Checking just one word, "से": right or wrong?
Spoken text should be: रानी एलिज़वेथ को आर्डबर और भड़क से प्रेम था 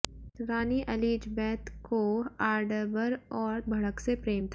right